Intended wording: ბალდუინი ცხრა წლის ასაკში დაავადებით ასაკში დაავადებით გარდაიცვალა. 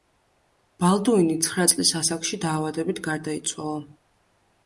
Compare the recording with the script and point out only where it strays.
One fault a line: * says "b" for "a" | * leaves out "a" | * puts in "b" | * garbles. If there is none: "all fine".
* leaves out "ასაკში დაავადებით"